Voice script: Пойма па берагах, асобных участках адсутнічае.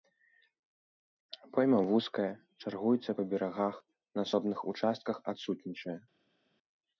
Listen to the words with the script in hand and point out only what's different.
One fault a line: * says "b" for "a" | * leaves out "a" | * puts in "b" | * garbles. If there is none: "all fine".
* puts in "вузкая чаргуецца"
* puts in "на"